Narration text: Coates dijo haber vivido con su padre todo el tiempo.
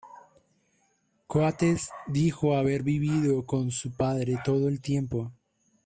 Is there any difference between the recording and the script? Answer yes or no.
no